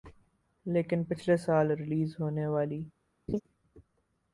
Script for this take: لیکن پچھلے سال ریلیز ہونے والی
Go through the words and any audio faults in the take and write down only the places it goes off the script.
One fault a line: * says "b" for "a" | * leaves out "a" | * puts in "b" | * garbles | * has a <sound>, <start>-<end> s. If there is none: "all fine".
* has a laugh, 3.3-3.4 s